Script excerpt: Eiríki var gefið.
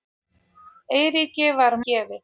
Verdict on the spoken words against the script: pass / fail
pass